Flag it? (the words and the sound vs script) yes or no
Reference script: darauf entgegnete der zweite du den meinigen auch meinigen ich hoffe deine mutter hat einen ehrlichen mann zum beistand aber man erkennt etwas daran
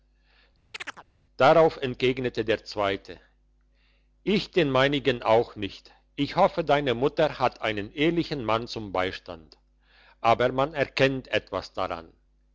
yes